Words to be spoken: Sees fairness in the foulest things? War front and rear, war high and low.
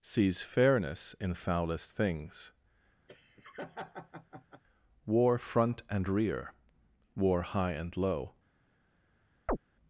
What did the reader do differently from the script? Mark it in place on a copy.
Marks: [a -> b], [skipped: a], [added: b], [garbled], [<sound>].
Sees fairness in [skipped: the] foulest things? [laugh] War front and rear, war high and low. [chirp]